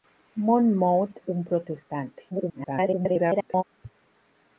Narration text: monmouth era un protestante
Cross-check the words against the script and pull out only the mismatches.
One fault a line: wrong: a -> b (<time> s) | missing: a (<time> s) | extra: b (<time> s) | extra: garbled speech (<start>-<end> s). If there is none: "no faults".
missing: era (1.2 s)
extra: garbled speech (2.3-3.6 s)